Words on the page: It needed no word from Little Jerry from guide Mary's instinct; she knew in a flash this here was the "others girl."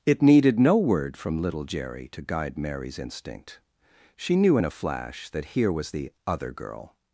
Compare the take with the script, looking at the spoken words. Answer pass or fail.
fail